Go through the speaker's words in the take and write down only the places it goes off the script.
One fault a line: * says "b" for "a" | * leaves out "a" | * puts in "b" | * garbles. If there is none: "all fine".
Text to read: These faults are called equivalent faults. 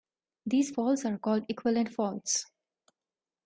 all fine